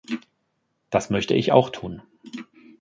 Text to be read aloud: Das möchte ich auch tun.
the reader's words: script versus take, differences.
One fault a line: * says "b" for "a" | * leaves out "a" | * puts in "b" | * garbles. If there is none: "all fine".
all fine